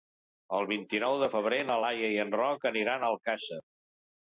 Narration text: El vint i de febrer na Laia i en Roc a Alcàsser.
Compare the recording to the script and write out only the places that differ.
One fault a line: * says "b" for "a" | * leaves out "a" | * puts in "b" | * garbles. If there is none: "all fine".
* puts in "nou"
* puts in "aniran"